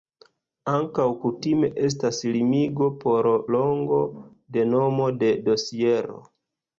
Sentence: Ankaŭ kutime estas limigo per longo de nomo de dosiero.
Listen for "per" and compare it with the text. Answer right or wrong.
wrong